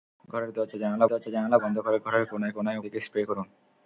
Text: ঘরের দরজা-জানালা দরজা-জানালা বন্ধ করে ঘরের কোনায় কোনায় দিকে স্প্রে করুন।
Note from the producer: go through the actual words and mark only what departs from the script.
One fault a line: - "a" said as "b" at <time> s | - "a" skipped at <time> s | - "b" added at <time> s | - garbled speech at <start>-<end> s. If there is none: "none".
none